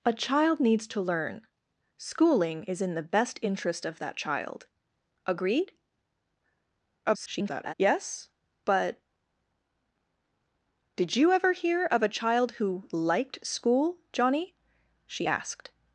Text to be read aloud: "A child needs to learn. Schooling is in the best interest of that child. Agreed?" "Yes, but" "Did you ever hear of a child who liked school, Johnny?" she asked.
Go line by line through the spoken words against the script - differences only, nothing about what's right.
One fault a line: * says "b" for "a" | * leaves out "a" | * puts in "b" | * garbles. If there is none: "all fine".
* garbles